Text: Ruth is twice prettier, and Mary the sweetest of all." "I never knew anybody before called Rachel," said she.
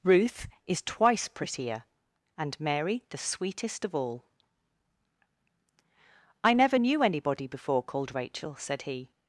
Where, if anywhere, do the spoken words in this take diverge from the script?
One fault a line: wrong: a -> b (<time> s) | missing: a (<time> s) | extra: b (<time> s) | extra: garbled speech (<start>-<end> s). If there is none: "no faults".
wrong: she -> he (8.8 s)